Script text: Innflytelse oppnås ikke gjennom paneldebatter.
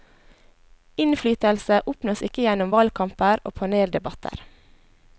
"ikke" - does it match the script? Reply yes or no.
yes